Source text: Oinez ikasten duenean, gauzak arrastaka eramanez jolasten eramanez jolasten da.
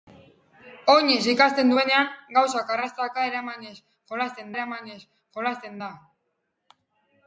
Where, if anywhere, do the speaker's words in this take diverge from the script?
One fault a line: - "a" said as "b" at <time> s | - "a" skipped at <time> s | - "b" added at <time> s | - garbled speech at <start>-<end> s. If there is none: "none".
none